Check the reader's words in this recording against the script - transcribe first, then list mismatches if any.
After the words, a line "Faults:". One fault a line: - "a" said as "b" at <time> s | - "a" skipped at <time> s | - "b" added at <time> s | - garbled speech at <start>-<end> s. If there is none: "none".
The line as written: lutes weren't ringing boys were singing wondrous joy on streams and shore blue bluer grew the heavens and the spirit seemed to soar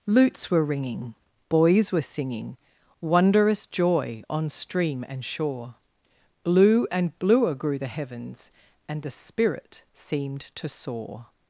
lutes were ringing boys were singing wondrous joy on stream and shore blue and bluer grew the heavens and the spirit seemed to soar
Faults:
- "weren't" said as "were" at 0.5 s
- "streams" said as "stream" at 4.5 s
- "and" added at 6.9 s